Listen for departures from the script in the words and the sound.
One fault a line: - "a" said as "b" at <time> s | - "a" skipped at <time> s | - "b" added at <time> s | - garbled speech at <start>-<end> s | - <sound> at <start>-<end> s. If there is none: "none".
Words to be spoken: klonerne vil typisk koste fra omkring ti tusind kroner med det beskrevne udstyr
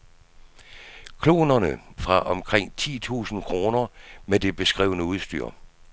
- "vil typisk koste" skipped at 1.8 s